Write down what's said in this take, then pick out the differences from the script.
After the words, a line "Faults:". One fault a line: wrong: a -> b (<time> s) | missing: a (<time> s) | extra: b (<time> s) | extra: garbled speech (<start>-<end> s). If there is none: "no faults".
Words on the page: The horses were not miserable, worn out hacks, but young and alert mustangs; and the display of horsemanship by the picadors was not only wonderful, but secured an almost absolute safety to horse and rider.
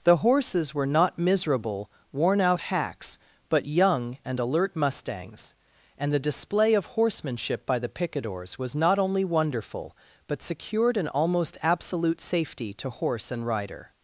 The horses were not miserable, worn out hacks, but young and alert mustangs; and the display of horsemanship by the picadors was not only wonderful, but secured an almost absolute safety to horse and rider.
Faults:
no faults